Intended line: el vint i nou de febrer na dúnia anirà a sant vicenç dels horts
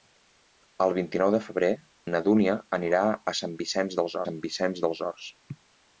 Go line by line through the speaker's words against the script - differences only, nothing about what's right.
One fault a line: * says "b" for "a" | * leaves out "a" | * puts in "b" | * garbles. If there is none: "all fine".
* puts in "sant vicenç dels"